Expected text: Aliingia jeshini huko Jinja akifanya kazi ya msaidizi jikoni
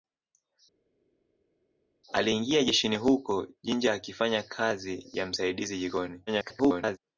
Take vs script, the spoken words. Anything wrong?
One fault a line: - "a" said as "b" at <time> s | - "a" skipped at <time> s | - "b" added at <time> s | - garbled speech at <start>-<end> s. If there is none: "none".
- garbled speech at 6.3-7.0 s